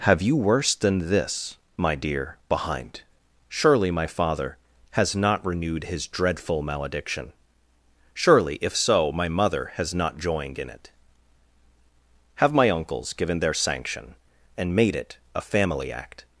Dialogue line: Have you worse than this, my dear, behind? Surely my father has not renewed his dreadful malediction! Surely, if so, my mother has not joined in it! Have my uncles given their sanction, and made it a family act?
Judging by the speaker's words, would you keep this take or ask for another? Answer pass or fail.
pass